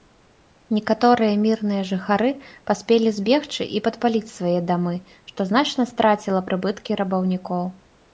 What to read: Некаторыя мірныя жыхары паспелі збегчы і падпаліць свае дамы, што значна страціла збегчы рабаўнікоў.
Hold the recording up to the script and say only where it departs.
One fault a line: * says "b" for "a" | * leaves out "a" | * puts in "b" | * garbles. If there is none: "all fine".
* says "прыбыткі" for "збегчы"